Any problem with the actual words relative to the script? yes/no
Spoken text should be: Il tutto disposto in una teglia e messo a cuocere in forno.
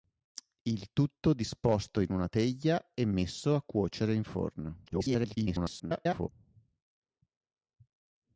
yes